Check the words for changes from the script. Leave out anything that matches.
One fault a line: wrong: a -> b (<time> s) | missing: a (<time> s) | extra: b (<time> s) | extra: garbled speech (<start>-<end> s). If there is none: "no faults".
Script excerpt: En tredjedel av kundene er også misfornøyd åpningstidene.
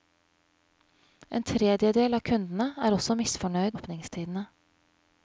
no faults